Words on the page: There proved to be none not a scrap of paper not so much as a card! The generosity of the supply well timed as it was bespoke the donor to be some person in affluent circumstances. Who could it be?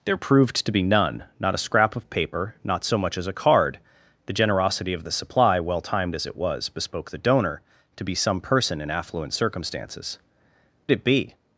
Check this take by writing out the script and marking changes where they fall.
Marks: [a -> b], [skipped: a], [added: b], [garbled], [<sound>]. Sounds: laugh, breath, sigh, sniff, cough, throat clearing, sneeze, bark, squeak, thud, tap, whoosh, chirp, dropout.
There proved to be none not a scrap of paper not so much as a card! The generosity of the supply well timed as it was bespoke the donor to be some person in affluent circumstances. [skipped: Who could] it be?